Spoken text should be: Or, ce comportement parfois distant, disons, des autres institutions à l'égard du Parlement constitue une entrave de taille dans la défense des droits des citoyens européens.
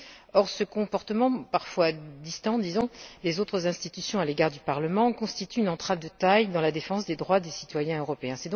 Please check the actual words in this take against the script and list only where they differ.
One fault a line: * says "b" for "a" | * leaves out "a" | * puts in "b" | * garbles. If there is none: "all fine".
all fine